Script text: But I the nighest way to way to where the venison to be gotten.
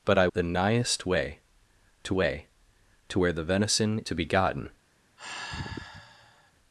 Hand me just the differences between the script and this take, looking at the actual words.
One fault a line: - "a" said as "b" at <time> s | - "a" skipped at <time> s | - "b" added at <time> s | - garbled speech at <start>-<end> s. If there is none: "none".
none